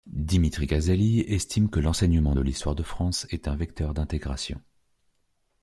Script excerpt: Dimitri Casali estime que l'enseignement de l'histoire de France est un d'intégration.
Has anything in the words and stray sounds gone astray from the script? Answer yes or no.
yes